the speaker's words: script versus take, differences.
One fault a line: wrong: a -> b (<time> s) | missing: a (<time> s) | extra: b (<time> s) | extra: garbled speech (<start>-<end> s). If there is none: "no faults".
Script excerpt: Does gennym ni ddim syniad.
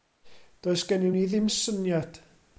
no faults